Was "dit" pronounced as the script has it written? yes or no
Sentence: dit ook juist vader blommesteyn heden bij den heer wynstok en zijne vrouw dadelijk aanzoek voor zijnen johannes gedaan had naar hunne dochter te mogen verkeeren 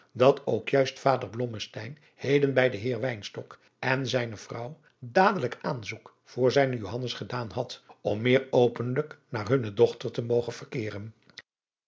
no